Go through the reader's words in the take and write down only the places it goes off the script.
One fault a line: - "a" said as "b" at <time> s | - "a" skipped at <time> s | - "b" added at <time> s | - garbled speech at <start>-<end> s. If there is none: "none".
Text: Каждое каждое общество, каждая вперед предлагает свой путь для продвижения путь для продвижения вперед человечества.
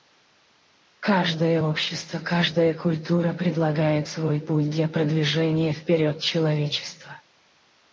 - "каждое" skipped at 1.6 s
- "вперед" said as "культура" at 2.7 s
- "путь для продвижения" skipped at 5.7 s